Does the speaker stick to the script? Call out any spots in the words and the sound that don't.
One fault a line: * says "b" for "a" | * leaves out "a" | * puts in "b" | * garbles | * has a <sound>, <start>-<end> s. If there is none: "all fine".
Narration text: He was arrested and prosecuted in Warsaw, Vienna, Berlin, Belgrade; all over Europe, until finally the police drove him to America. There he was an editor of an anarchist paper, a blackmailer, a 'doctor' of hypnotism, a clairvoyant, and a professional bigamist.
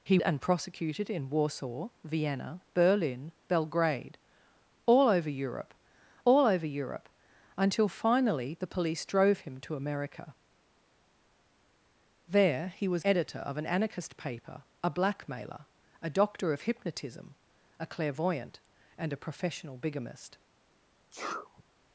* leaves out "was arrested"
* puts in "all over Europe"
* leaves out "an"
* has a sneeze, 21.1-21.6 s